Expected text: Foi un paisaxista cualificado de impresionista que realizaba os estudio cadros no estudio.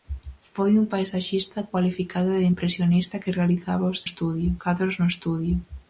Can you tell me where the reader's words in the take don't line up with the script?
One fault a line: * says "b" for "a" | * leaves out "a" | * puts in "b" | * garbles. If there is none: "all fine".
all fine